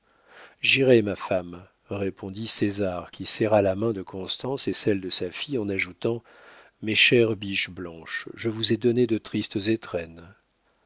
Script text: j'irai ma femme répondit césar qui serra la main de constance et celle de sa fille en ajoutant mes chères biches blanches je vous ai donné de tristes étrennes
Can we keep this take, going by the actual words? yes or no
yes